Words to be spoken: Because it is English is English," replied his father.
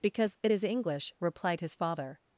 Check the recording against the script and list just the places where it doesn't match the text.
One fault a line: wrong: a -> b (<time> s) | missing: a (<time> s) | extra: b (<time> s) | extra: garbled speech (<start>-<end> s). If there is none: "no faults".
missing: is English (1.1 s)